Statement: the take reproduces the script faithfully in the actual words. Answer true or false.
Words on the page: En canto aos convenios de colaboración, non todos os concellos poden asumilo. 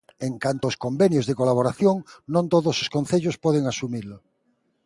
true